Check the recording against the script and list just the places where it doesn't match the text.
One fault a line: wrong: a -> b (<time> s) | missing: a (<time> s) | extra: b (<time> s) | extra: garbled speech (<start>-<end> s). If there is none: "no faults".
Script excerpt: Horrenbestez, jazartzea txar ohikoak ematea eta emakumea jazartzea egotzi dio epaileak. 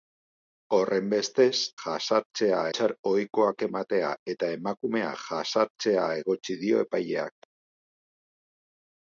no faults